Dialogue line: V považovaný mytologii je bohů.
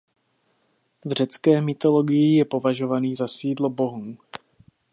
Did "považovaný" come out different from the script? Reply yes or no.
yes